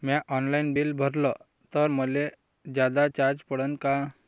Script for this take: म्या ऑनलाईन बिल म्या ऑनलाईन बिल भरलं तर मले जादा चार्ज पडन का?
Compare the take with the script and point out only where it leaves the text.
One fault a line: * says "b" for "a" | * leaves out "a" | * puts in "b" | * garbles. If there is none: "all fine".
* leaves out "म्या ऑनलाईन बिल"